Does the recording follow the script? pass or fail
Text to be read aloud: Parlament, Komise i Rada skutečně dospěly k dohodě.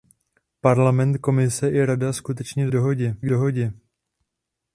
fail